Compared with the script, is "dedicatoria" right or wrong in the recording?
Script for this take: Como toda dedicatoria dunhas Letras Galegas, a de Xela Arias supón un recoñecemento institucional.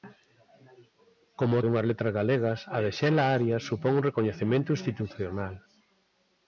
wrong